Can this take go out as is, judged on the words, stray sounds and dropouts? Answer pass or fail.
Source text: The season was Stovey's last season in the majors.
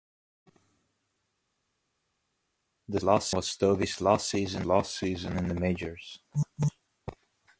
fail